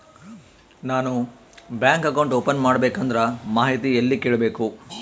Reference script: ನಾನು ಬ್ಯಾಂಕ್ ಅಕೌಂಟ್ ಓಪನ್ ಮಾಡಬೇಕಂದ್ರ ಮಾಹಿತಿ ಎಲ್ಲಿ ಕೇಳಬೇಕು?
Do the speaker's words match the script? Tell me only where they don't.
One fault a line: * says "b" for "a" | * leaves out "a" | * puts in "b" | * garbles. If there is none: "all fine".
all fine